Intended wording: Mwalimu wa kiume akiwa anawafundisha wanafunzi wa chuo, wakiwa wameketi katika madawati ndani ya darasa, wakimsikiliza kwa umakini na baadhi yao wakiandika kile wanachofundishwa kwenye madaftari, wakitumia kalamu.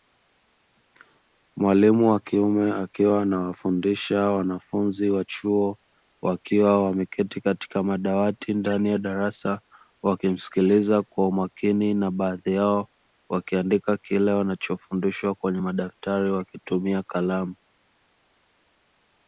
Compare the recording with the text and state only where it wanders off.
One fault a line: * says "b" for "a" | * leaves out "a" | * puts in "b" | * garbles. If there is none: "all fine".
all fine